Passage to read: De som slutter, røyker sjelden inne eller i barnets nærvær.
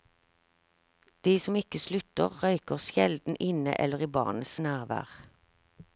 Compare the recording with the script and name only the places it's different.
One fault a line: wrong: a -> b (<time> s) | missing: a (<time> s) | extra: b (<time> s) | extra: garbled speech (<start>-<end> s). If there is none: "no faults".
extra: ikke (1.6 s)